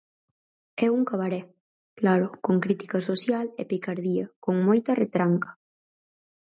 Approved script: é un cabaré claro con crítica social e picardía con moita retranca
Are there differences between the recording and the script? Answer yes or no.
no